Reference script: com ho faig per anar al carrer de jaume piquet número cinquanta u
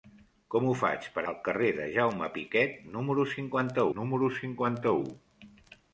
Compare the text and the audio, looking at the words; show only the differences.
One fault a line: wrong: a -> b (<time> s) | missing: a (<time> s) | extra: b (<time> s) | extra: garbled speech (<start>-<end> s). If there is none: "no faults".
missing: anar (1.2 s)
extra: número cinquanta (4.0 s)